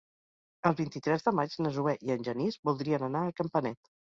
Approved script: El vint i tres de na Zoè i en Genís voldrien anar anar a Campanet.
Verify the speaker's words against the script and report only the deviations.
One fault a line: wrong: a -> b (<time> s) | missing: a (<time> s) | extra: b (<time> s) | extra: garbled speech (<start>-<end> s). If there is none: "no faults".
extra: maig (1.4 s)
missing: anar (3.2 s)